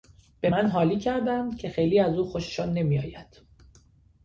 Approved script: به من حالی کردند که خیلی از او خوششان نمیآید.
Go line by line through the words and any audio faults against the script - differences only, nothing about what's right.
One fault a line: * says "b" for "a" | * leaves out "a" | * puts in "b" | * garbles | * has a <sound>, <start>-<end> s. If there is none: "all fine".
all fine